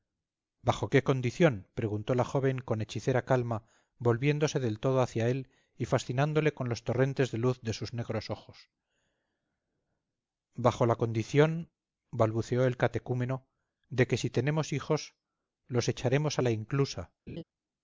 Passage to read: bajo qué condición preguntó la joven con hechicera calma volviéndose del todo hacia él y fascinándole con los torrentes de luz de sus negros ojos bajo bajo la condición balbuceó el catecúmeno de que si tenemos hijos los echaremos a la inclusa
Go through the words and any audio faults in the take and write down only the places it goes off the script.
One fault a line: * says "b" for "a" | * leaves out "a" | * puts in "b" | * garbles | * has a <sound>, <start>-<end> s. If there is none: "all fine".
* leaves out "bajo"
* has a laugh, 17.3-17.4 s